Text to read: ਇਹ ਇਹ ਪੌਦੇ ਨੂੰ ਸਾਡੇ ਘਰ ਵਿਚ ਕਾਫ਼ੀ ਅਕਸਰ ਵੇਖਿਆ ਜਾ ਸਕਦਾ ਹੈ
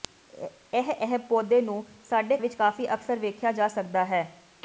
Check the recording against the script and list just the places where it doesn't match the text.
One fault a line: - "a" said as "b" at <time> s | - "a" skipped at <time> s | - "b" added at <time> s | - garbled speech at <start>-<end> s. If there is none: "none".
- "ਘਰ" skipped at 2.4 s